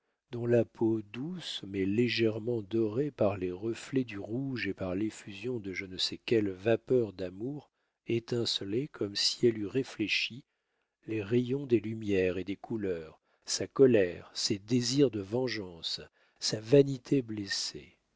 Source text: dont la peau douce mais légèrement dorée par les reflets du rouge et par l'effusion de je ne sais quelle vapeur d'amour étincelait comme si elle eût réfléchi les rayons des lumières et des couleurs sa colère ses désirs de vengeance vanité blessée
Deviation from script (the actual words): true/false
true